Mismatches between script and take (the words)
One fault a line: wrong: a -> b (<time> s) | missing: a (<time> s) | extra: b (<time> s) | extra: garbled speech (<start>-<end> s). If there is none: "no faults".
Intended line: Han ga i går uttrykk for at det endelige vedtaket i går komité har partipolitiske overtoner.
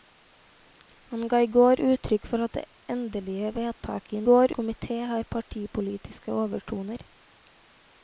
no faults